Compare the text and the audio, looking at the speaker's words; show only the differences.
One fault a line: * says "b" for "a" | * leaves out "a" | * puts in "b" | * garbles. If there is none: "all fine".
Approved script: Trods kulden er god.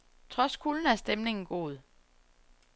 * puts in "stemningen"